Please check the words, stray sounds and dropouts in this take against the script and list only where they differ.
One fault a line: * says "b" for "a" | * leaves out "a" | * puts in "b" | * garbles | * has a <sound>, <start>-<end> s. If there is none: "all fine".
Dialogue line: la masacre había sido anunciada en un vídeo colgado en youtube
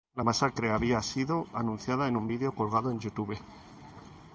all fine